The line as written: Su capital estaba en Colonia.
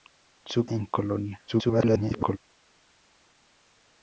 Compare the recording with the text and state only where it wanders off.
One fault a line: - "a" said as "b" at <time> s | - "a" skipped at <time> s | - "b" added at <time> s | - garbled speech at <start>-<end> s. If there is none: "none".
- "capital estaba" skipped at 0.7 s
- garbled speech at 1.5-2.4 s